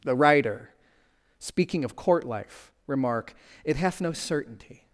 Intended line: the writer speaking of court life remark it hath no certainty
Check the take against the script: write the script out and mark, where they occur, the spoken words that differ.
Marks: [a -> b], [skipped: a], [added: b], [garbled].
the writer speaking of court life remark it hath no certainty